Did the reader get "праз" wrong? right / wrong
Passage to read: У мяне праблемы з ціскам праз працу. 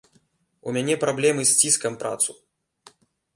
wrong